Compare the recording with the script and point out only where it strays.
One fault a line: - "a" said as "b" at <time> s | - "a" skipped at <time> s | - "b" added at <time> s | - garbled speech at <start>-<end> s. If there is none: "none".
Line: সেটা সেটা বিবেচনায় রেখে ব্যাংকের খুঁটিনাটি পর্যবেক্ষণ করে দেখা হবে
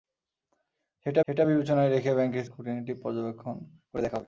none